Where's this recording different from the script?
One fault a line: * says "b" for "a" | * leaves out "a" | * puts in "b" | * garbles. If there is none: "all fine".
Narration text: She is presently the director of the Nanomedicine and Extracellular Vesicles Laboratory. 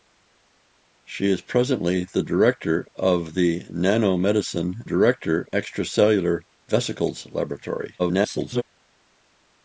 * says "director" for "and"
* garbles